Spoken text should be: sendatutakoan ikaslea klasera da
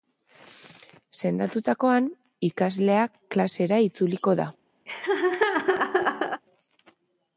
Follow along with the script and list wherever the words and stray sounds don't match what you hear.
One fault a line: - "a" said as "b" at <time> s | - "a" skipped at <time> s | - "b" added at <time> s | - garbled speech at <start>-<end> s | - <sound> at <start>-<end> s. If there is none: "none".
- "itzuliko" added at 3.9 s
- laugh at 4.9-6.4 s